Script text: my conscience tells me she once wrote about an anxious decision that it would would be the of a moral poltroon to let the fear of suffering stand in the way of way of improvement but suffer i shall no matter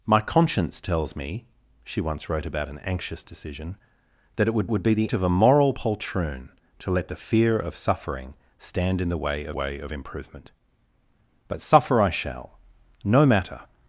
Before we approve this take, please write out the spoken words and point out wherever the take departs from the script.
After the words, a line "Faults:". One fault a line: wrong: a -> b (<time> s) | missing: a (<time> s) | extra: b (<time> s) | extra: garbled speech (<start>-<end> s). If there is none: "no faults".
my conscience tells me she once wrote about an anxious decision that it would would be the of a moral poltroon to let the fear of suffering stand in the way of way of improvement but suffer i shall no matter
Faults:
no faults